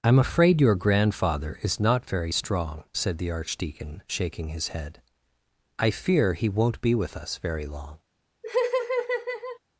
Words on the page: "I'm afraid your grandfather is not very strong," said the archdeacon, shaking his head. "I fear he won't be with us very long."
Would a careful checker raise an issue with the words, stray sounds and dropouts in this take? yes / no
yes